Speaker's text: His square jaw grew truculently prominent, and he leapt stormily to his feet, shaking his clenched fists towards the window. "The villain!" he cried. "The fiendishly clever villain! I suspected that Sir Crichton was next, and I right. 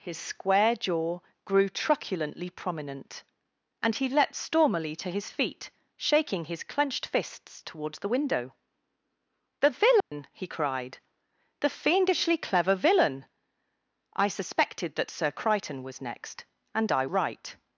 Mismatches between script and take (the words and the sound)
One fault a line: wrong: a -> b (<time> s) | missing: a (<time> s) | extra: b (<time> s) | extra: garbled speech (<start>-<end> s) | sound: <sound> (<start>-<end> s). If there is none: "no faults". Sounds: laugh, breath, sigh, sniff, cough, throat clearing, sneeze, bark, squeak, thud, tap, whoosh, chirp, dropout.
sound: dropout (10.0-10.1 s)